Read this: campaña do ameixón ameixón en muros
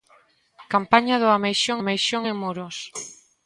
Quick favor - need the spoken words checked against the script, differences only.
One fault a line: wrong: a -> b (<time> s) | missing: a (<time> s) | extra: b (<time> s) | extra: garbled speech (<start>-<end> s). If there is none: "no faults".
no faults